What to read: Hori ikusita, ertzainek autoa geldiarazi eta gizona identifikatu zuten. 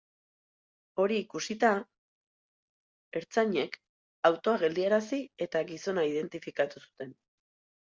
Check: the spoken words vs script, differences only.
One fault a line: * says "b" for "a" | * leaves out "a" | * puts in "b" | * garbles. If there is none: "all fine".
all fine